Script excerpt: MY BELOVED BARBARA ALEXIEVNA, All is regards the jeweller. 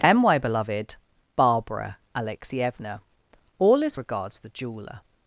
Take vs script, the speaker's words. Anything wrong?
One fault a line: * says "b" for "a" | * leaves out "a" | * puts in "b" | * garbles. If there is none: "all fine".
all fine